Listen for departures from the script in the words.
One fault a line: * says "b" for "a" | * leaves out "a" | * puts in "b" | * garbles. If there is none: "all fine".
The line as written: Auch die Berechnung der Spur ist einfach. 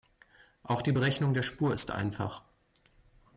all fine